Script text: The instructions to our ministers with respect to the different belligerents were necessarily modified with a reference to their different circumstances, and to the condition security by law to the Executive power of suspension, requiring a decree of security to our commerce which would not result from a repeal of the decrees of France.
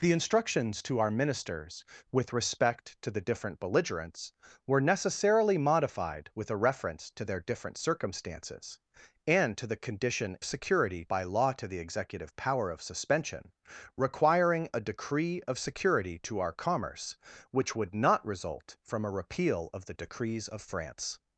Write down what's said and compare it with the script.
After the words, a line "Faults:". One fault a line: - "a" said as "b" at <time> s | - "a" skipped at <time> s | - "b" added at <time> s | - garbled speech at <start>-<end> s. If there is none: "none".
The instructions to our ministers with respect to the different belligerents were necessarily modified with a reference to their different circumstances, and to the condition security by law to the Executive power of suspension, requiring a decree of security to our commerce which would not result from a repeal of the decrees of France.
Faults:
none